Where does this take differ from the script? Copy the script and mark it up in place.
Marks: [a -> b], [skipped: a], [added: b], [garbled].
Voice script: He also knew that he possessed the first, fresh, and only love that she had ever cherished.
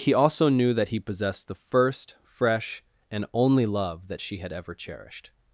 He also knew that he possessed the first, fresh, and only love that she had ever cherished.